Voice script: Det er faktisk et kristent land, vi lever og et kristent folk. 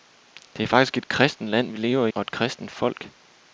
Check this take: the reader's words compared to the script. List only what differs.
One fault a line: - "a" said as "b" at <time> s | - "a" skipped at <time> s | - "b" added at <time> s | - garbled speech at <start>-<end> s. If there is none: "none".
none